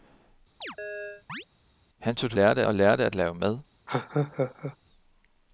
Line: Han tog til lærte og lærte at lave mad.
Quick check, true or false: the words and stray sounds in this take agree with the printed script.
false